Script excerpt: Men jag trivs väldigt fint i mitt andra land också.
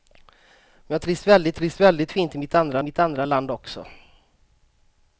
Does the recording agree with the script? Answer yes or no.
no